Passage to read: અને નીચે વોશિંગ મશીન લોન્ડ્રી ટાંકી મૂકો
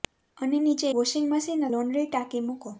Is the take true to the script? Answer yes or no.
yes